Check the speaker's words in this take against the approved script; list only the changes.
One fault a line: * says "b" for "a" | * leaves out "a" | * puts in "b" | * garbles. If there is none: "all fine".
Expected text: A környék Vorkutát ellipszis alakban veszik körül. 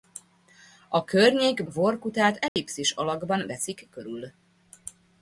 all fine